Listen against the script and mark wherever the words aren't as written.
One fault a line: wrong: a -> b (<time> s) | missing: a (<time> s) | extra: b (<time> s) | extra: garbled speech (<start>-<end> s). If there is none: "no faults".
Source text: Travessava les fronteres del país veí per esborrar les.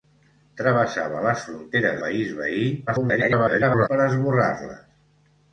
missing: del (2.0 s)
extra: garbled speech (2.9-3.9 s)